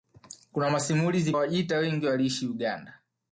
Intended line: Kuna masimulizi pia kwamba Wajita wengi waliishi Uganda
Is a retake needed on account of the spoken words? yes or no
yes